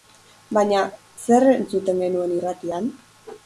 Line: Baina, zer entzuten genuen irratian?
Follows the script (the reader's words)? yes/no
yes